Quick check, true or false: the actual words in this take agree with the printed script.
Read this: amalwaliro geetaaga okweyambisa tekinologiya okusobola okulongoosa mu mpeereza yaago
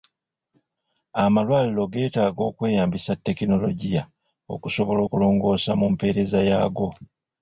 true